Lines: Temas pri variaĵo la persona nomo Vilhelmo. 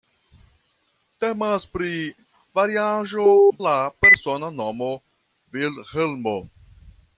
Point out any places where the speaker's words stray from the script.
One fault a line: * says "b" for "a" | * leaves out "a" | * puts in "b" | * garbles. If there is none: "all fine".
all fine